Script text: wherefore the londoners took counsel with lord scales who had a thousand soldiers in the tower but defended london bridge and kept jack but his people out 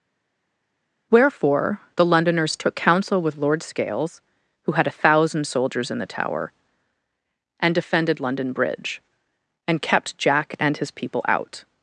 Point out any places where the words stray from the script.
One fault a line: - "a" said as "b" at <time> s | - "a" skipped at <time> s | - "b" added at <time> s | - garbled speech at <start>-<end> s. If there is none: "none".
- "but" said as "and" at 7.6 s
- "but" said as "and" at 10.6 s